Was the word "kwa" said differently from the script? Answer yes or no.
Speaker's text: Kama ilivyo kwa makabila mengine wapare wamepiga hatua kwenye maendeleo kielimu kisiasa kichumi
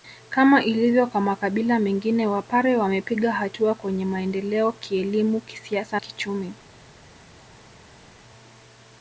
no